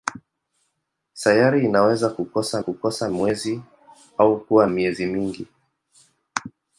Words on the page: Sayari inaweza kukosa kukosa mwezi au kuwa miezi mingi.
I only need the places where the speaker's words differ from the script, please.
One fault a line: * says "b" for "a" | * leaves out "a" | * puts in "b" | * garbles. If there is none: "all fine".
all fine